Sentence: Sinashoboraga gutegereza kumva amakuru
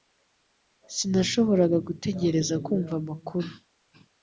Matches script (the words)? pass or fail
pass